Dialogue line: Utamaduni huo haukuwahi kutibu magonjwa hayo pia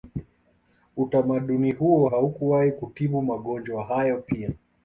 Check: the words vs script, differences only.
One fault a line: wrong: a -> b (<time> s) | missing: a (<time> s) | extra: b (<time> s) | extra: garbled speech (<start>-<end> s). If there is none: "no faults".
no faults